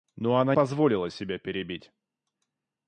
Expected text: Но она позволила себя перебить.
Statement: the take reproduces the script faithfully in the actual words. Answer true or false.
true